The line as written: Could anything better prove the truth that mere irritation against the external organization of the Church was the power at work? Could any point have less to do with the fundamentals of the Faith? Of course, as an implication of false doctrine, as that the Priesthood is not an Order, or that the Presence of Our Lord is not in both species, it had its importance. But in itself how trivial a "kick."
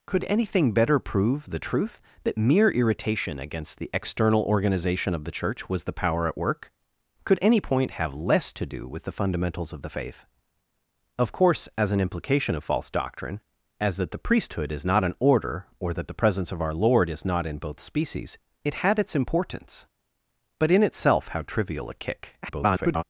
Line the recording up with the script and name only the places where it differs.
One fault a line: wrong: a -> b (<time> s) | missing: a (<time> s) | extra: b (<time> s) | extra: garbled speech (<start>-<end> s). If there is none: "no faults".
extra: garbled speech (22.4-23.0 s)